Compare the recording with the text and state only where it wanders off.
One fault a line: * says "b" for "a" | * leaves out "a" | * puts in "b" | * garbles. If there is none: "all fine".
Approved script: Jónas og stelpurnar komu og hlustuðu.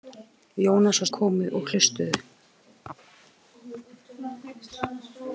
* leaves out "stelpurnar"